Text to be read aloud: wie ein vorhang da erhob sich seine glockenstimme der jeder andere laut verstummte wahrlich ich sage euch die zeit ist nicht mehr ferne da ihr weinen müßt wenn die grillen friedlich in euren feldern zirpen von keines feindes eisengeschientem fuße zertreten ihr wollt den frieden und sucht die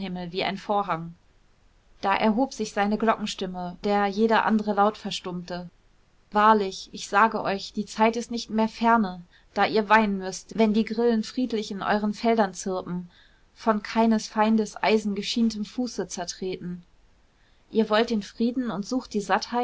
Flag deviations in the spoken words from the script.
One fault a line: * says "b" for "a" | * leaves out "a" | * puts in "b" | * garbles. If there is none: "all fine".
all fine